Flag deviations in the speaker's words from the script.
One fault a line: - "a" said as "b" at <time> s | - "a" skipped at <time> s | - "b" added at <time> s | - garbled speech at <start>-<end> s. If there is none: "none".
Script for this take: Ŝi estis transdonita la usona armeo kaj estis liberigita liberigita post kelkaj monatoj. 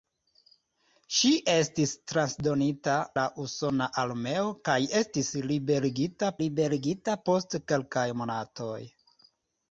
none